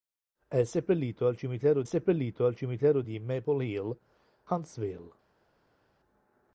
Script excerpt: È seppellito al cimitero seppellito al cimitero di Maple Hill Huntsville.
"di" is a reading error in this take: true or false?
false